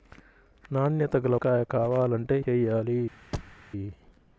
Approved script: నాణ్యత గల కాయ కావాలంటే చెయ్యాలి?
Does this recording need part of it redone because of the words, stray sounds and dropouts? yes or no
yes